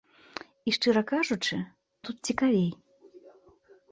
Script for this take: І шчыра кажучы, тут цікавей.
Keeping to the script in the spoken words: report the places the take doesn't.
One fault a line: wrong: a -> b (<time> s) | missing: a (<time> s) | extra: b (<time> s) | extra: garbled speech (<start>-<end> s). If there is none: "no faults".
no faults